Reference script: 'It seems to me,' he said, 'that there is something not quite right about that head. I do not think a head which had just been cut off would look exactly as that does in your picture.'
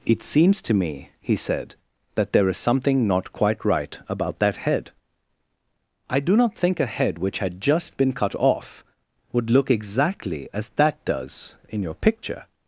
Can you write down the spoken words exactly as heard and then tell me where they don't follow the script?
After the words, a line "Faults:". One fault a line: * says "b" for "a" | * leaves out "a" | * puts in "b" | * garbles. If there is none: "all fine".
'It seems to me,' he said, 'that there is something not quite right about that head. I do not think a head which had just been cut off would look exactly as that does in your picture.'
Faults:
all fine